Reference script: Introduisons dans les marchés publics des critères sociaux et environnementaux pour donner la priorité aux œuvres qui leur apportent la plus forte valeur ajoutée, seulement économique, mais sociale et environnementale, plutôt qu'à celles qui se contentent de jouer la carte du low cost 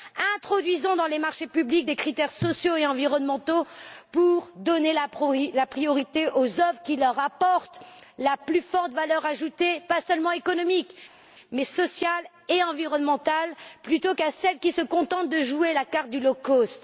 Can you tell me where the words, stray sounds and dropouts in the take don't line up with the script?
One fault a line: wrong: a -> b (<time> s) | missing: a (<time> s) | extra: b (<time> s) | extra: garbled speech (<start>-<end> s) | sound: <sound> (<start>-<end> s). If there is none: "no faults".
extra: pas (9.9 s)